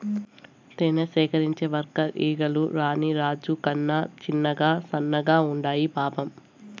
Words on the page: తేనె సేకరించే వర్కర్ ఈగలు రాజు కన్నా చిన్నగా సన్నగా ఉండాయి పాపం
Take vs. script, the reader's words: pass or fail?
fail